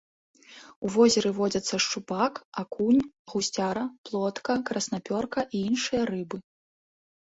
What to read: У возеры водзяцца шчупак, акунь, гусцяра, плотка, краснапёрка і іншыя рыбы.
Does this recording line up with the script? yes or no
yes